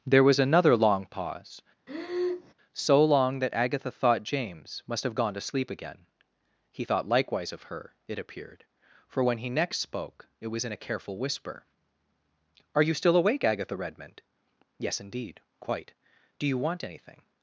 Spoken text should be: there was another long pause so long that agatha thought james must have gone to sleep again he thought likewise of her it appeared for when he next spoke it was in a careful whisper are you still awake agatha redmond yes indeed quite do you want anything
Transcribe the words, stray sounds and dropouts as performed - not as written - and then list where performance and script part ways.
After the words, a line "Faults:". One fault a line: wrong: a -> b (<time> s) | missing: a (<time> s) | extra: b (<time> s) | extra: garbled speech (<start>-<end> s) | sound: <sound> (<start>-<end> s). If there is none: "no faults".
there was another long pause so long that agatha thought james must have gone to sleep again he thought likewise of her it appeared for when he next spoke it was in a careful whisper are you still awake agatha redmond yes indeed quite do you want anything
Faults:
sound: breath (1.9-2.5 s)